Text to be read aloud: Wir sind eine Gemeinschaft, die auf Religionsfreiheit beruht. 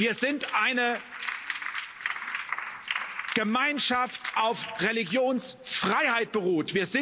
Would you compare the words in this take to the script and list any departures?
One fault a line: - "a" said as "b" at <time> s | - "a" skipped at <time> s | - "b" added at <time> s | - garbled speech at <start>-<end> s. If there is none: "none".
- "die" skipped at 4.4 s